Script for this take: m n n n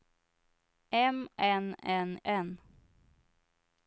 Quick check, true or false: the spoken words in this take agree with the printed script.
true